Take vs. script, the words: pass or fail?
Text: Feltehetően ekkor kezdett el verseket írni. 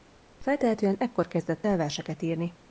pass